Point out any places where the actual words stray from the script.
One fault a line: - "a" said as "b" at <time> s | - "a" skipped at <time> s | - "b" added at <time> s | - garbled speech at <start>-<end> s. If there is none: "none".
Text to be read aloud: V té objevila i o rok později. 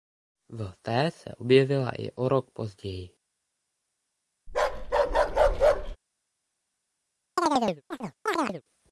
- "se" added at 1.1 s